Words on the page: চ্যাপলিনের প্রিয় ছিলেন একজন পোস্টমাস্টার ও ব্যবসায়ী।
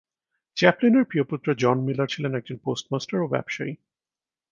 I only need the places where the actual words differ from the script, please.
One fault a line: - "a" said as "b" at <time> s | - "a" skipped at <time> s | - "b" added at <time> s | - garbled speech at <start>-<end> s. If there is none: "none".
- "পুত্র জন মিলার" added at 1.2 s